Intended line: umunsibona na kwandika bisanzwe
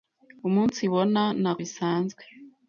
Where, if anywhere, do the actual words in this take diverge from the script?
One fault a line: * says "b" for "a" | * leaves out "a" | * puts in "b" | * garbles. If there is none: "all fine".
* leaves out "kwandika"